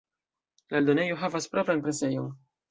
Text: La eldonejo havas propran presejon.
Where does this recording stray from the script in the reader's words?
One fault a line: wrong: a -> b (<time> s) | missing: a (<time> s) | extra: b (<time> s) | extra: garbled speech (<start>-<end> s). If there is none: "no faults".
no faults